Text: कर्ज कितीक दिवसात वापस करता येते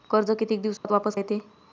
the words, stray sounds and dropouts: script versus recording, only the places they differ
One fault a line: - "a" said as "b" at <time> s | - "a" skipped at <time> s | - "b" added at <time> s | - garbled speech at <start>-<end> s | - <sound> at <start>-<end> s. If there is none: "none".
- dropout at 0.8-0.8 s
- "करता" skipped at 1.1 s